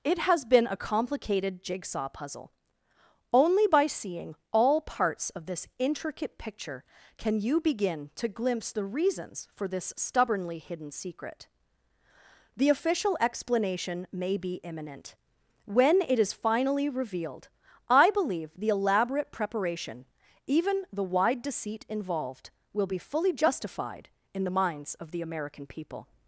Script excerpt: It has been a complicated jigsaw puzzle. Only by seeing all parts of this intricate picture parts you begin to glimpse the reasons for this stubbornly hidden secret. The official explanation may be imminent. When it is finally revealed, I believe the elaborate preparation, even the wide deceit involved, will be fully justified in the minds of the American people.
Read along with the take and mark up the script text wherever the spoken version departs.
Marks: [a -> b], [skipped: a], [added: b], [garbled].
It has been a complicated jigsaw puzzle. Only by seeing all parts of this intricate picture [parts -> can] you begin to glimpse the reasons for this stubbornly hidden secret. The official explanation may be imminent. When it is finally revealed, I believe the elaborate preparation, even the wide deceit involved, will be fully justified in the minds of the American people.